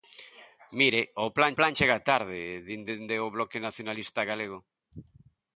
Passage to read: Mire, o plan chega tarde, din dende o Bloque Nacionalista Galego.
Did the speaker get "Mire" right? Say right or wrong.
right